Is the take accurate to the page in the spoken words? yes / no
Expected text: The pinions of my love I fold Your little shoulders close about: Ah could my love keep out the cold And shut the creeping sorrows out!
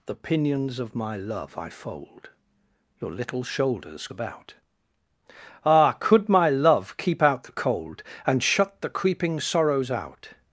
no